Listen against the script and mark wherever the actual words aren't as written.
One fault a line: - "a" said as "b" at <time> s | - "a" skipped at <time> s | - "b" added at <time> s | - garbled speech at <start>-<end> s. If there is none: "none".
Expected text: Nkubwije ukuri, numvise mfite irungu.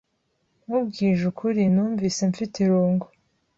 none